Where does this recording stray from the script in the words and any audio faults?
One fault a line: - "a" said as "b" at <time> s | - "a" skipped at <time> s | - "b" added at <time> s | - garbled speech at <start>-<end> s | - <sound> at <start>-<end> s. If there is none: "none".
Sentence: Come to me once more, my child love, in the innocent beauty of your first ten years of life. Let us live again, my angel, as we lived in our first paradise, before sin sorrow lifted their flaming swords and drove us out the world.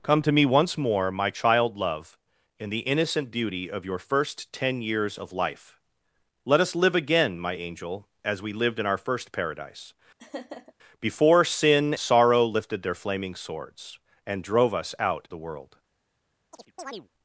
- laugh at 10.2-10.7 s
- chirp at 16.5-17.1 s